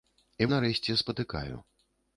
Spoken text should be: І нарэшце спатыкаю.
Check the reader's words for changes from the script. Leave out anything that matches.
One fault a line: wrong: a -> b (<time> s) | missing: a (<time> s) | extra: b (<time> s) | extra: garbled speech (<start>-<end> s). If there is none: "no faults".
no faults